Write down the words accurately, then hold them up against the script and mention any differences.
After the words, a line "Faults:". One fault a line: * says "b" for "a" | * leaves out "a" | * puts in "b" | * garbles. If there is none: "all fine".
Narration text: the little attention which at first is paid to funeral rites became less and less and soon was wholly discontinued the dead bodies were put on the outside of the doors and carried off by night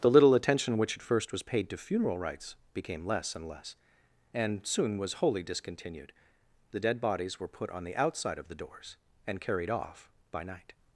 the little attention which at first was paid to funeral rites became less and less and soon was wholly discontinued the dead bodies were put on the outside of the doors and carried off by night
Faults:
* says "was" for "is"